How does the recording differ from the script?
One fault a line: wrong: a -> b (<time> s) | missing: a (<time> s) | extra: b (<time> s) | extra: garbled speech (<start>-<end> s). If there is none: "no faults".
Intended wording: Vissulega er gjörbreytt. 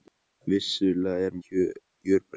no faults